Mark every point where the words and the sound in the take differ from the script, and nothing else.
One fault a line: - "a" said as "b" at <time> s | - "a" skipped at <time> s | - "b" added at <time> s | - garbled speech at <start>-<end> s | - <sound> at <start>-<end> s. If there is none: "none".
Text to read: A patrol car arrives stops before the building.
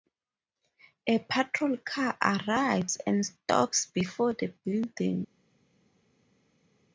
- "and" added at 3.0 s